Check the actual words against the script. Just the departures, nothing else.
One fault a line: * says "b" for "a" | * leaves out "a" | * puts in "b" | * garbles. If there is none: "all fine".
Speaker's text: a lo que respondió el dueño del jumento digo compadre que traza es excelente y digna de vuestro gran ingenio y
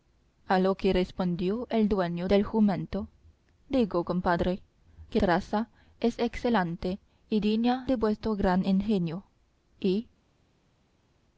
all fine